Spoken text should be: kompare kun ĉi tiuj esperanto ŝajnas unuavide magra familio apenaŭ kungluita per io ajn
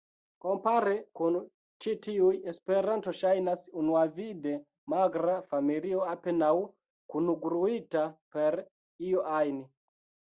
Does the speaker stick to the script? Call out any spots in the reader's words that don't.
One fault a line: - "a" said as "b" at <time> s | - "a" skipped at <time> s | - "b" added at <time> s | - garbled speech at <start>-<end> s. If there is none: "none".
none